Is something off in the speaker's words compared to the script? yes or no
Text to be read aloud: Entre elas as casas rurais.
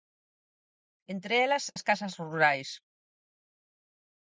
no